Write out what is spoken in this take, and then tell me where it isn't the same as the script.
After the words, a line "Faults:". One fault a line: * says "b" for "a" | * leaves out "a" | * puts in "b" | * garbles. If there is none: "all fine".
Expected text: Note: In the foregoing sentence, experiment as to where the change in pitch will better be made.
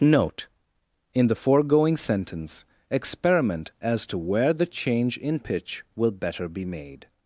Note: In the foregoing sentence, experiment as to where the change in pitch will better be made.
Faults:
all fine